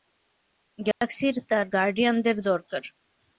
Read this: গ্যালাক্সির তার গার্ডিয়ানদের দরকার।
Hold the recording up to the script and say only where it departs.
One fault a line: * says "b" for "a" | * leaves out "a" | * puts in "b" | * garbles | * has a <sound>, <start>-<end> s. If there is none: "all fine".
* has a dropout, 0.9-1.0 s